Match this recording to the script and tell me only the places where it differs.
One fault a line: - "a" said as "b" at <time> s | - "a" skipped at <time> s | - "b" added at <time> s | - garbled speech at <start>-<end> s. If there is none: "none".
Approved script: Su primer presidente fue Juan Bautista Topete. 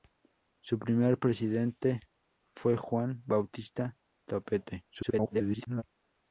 - garbled speech at 4.9-5.8 s